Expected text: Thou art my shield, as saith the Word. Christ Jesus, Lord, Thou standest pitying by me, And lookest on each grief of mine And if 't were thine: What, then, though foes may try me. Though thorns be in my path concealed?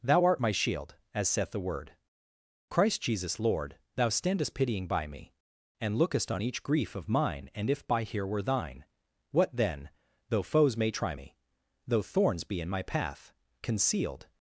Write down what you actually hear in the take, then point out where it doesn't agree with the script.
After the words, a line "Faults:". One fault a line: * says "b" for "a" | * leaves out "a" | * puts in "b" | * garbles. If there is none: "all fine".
Thou art my shield, as saith the Word. Christ Jesus, Lord, Thou standest pitying by me, And lookest on each grief of mine And if 'by here were thine: What, then, though foes may try me. Though thorns be in my path concealed?
Faults:
* says "by here" for "t"